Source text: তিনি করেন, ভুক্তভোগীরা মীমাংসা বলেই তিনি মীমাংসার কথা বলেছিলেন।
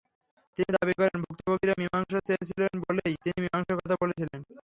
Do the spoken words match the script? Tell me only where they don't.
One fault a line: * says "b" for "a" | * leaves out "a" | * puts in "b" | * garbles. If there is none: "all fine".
* puts in "দাবি"
* puts in "চেয়েছিলেন"